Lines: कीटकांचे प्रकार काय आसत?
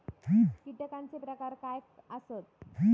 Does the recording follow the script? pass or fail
pass